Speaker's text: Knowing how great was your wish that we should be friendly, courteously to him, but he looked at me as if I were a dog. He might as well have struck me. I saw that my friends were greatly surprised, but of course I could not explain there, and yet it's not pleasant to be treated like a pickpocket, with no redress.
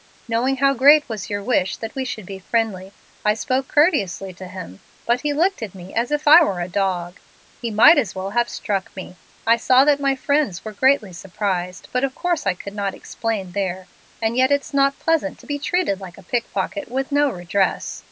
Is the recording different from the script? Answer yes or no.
yes